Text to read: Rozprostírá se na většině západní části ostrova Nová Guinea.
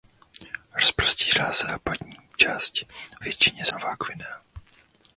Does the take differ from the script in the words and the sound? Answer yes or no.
yes